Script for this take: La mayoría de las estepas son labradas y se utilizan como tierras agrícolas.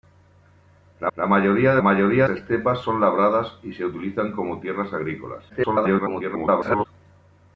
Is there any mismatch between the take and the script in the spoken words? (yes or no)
yes